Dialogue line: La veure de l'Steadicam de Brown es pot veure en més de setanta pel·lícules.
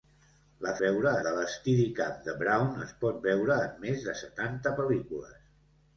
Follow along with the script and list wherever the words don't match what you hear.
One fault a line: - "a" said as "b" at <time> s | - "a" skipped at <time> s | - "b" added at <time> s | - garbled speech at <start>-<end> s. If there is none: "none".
none